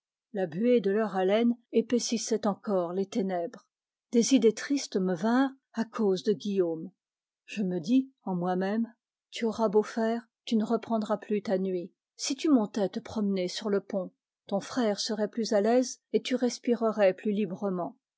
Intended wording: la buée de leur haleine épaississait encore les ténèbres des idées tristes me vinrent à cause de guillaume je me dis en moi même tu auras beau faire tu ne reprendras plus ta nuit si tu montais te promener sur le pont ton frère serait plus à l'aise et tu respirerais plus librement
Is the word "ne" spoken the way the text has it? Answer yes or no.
yes